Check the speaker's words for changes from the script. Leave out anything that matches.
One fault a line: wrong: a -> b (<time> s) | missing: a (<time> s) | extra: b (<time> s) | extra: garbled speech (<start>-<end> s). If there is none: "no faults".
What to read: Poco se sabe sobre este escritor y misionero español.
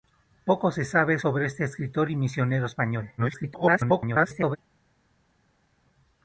extra: garbled speech (3.2-4.6 s)